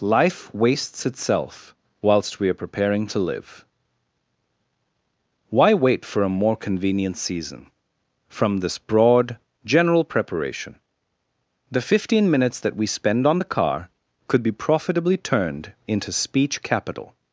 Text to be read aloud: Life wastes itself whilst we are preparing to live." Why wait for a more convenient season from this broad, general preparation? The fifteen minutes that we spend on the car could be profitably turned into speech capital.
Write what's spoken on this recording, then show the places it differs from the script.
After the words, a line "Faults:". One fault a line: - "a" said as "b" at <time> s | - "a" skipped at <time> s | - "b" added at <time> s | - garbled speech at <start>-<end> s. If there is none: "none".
Life wastes itself whilst we are preparing to live." Why wait for a more convenient season from this broad, general preparation? The fifteen minutes that we spend on the car could be profitably turned into speech capital.
Faults:
none